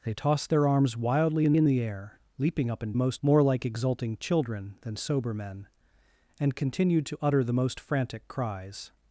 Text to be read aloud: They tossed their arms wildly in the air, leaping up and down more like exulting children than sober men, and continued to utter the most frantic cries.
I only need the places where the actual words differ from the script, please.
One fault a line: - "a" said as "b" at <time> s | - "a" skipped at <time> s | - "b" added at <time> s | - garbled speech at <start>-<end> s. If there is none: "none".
- "in" added at 1.6 s
- "down" said as "most" at 3.0 s